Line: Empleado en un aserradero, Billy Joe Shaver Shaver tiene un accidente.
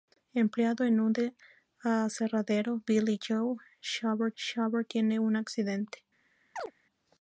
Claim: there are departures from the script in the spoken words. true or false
false